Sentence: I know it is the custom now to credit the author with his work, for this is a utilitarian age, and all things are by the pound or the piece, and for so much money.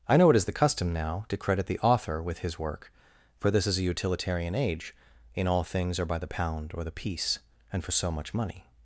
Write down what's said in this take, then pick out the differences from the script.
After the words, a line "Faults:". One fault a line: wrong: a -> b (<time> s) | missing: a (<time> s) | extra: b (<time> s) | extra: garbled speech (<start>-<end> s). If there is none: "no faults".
I know it is the custom now to credit the author with his work, for this is a utilitarian age, in all things are by the pound or the piece, and for so much money.
Faults:
wrong: and -> in (5.3 s)